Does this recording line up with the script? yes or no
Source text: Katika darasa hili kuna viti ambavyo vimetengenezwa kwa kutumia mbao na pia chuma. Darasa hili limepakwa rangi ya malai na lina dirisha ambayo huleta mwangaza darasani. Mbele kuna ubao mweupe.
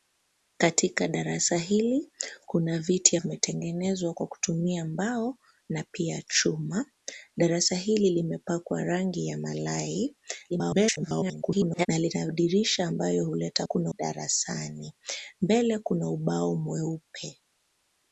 no